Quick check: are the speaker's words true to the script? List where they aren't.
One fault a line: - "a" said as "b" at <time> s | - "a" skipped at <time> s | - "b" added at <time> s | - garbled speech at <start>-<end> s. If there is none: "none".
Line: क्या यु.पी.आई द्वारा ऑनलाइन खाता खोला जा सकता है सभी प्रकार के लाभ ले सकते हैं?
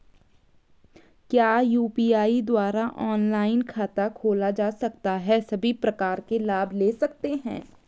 none